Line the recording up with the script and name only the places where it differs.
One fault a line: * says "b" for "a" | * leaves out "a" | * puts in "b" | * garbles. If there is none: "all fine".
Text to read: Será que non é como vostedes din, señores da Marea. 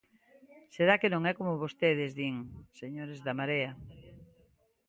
all fine